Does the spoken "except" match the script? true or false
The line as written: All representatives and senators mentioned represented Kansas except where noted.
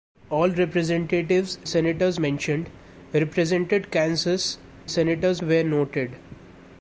false